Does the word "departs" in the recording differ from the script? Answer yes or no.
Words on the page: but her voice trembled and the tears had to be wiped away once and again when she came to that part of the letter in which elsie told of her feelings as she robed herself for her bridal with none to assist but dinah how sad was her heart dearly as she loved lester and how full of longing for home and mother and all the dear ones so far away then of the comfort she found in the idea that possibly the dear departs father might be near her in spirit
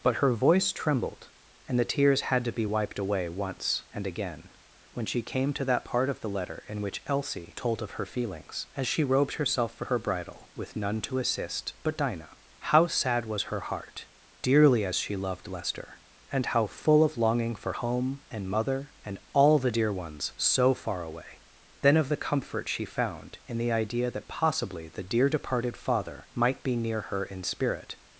yes